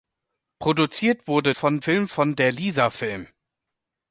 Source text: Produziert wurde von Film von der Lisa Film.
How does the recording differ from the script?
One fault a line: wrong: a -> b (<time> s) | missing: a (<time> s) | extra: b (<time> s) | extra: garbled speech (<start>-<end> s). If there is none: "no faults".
no faults